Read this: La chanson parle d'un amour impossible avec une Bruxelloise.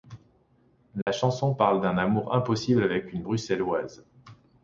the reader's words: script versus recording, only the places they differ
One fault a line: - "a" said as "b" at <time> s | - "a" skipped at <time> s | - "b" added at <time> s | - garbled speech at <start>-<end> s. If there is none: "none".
none